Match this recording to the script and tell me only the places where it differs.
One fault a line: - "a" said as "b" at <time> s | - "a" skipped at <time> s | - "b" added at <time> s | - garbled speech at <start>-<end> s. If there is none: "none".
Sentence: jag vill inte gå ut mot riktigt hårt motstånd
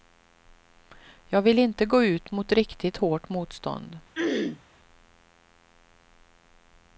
none